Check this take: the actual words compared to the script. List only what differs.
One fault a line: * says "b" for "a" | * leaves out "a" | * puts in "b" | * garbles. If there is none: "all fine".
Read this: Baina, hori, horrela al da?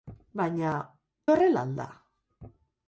* leaves out "hori"